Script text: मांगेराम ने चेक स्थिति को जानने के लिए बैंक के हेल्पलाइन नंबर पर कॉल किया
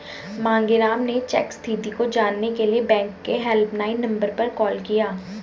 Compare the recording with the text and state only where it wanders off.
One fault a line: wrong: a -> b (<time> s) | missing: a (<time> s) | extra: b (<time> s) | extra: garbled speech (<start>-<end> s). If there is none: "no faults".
no faults